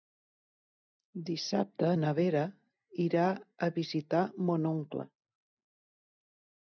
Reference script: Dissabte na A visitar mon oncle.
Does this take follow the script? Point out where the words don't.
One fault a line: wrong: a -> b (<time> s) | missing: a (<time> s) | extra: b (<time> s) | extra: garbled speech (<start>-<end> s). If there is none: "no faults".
extra: Vera irà (2.2 s)